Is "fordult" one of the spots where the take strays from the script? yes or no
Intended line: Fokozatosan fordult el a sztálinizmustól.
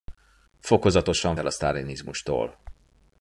yes